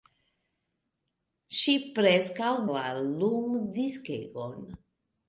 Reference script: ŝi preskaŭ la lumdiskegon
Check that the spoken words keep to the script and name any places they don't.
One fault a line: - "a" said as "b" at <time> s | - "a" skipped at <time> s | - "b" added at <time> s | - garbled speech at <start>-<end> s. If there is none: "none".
none